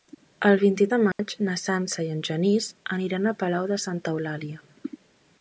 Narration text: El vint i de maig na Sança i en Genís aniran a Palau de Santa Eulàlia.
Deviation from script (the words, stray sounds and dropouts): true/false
true